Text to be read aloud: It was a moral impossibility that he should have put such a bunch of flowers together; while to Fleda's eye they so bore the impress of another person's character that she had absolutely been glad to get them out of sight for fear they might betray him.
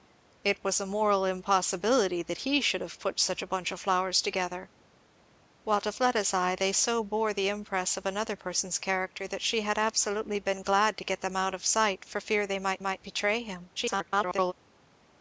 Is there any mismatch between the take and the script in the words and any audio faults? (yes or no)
yes